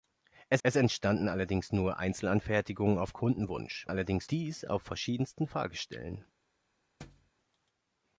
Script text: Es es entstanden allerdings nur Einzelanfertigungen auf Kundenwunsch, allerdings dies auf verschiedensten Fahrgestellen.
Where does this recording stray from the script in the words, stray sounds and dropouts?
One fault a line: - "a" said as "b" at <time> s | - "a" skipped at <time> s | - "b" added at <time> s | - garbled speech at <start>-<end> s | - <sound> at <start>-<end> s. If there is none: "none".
- thud at 7.0-7.3 s